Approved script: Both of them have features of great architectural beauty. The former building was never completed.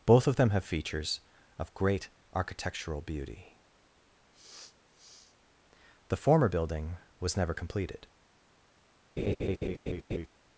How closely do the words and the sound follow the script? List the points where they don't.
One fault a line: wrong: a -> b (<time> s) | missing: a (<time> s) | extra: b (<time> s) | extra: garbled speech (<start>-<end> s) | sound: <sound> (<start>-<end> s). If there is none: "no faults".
sound: sniff (4.3-5.4 s)
sound: laugh (9.2-10.3 s)